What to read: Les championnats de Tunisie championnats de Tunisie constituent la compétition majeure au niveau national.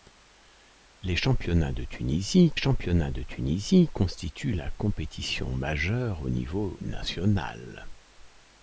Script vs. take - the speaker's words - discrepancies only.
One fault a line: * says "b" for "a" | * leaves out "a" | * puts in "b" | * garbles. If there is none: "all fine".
all fine